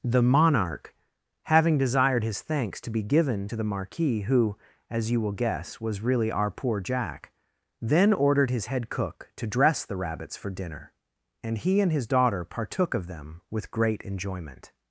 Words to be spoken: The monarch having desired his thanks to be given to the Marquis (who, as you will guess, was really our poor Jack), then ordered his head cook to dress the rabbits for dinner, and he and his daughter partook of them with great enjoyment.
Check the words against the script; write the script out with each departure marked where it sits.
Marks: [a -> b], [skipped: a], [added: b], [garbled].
The monarch having desired his thanks to be given to the Marquis (who, as you will guess, was really our poor Jack), then ordered his head cook to dress the rabbits for dinner, and he and his daughter partook of them with great enjoyment.